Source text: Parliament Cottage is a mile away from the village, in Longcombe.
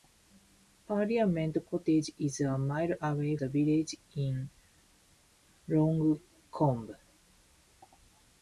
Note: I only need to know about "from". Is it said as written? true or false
false